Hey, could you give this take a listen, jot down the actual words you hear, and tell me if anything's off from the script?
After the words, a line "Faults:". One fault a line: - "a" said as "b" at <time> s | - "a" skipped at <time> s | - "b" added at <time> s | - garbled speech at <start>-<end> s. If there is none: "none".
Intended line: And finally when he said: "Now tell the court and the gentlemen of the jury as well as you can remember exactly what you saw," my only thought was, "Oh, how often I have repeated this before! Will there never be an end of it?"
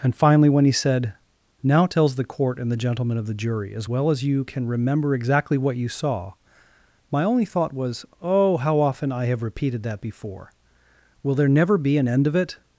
And finally when he said: "Now tells the court and the gentlemen of the jury as well as you can remember exactly what you saw," my only thought was, "Oh, how often I have repeated that before! Will there never be an end of it?"
Faults:
- "tell" said as "tells" at 1.9 s
- "this" said as "that" at 9.8 s